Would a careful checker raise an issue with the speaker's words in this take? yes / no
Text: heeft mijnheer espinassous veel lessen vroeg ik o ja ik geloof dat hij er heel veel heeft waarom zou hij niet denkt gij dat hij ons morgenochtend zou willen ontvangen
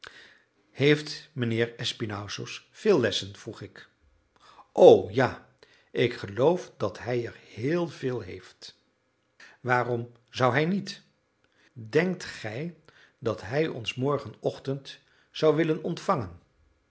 no